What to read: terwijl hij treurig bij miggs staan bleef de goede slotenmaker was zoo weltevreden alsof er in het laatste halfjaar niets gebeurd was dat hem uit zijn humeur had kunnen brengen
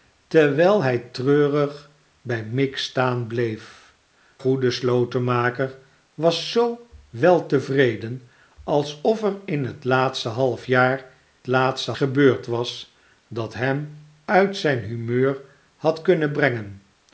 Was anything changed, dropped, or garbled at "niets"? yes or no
yes